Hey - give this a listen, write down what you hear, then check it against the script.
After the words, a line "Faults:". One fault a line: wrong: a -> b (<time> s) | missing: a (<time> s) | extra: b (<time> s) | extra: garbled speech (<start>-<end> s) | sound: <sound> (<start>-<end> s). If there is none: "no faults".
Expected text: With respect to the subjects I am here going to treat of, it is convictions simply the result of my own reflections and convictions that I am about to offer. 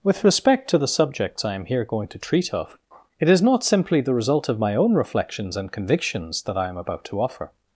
With respect to the subjects I am here going to treat of, it is not simply the result of my own reflections and convictions that I am about to offer.
Faults:
wrong: convictions -> not (3.4 s)